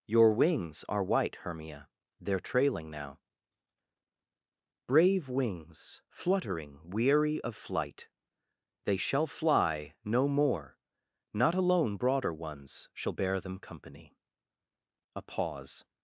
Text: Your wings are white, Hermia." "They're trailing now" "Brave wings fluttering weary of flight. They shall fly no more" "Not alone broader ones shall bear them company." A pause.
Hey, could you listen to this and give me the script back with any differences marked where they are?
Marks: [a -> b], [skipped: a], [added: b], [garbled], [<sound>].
Your wings are white, Hermia." "They're trailing now" "Brave wings fluttering weary of flight. They shall fly no more" "Not alone broader ones shall bear them company." A pause.